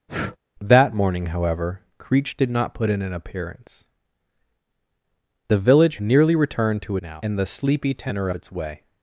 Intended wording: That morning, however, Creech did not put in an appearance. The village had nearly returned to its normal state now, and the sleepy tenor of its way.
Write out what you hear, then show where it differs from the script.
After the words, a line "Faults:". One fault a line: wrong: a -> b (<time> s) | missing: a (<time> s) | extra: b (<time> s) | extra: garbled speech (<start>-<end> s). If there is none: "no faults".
That morning, however, Creech did not put in an appearance. The village nearly returned to now, and the sleepy tenor its way.
Faults:
missing: had (6.0 s)
missing: its normal state (7.0 s)
missing: of (8.3 s)